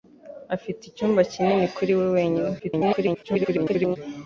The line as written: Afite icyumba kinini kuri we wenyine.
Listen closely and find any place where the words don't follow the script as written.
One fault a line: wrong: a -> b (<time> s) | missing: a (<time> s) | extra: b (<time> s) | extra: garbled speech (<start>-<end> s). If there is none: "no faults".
extra: garbled speech (2.6-4.0 s)